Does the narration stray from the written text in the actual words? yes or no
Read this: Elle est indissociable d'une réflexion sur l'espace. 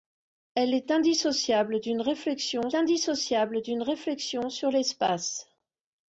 yes